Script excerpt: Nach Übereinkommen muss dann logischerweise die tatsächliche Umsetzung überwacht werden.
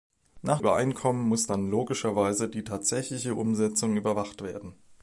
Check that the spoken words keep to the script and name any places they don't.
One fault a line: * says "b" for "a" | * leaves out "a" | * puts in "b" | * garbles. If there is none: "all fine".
all fine